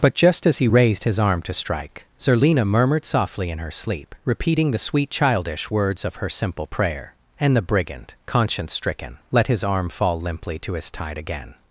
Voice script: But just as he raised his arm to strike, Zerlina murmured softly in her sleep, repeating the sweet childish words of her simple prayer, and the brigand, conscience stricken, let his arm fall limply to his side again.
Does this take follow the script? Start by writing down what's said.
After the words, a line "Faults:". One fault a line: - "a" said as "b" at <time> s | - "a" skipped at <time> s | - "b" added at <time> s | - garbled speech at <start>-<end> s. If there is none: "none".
But just as he raised his arm to strike, Zerlina murmured softly in her sleep, repeating the sweet childish words of her simple prayer, and the brigand, conscience stricken, let his arm fall limply to his tide again.
Faults:
- "side" said as "tide" at 10.9 s